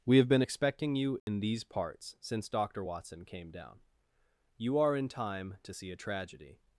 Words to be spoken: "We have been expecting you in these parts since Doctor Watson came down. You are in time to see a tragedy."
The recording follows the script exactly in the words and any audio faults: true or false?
false